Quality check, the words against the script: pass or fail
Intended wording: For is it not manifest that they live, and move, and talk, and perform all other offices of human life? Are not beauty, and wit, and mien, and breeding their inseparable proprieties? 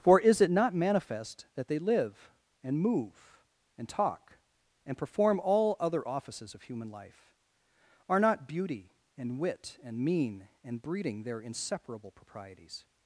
pass